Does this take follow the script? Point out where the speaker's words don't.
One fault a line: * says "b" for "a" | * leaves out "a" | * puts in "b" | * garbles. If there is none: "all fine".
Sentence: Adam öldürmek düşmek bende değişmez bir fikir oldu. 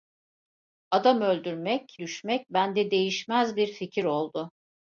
all fine